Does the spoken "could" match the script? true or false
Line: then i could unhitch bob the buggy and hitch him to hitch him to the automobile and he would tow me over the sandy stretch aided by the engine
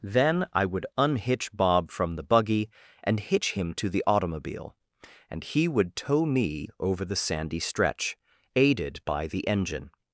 false